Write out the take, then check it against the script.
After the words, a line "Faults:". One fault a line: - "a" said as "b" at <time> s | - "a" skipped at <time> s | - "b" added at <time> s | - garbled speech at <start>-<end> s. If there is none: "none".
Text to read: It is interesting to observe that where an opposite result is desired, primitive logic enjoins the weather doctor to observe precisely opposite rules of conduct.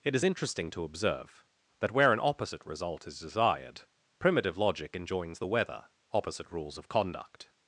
It is interesting to observe that where an opposite result is desired, primitive logic enjoins the weather opposite rules of conduct.
Faults:
- "doctor to observe precisely" skipped at 5.8 s